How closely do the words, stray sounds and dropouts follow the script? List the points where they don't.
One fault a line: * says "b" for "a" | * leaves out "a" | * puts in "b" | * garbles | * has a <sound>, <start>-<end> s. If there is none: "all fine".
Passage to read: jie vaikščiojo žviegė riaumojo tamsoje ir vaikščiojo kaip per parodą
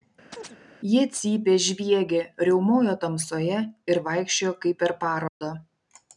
* has a chirp, 0.3-0.6 s
* says "cypė" for "vaikščiojo"
* has a dropout, 5.3-5.4 s